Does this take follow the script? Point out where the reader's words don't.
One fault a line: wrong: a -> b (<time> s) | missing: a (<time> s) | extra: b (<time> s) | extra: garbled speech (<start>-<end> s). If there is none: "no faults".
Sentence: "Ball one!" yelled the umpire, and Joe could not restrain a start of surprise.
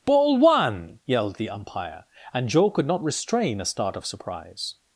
no faults